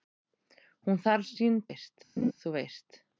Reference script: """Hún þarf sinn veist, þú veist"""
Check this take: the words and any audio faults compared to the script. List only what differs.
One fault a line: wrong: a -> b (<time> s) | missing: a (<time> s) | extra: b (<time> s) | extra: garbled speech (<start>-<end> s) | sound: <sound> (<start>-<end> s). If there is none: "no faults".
sound: laugh (2.2-2.3 s)